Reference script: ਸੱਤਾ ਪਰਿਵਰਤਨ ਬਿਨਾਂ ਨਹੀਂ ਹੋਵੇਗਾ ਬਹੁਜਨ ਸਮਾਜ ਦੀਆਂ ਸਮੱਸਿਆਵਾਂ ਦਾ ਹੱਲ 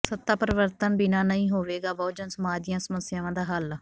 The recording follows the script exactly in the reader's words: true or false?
true